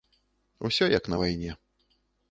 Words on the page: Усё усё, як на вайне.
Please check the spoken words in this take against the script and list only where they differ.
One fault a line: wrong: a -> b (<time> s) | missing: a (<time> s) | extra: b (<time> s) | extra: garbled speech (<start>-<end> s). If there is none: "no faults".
missing: усё (0.9 s)